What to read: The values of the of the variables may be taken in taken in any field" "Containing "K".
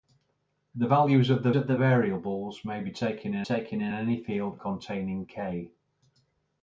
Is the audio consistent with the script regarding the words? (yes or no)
yes